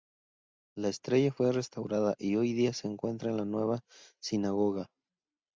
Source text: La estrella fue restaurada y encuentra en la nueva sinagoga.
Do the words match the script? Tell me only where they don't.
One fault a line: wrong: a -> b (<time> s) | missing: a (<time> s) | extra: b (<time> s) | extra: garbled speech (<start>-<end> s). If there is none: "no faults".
extra: hoy día se (2.4 s)